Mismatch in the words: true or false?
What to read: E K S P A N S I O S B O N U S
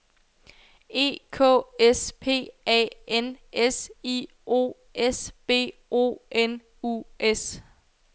false